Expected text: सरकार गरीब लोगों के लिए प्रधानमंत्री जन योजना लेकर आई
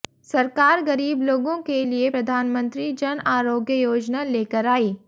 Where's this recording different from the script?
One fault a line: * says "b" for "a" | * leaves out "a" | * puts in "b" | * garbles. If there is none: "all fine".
* puts in "आरोग्य"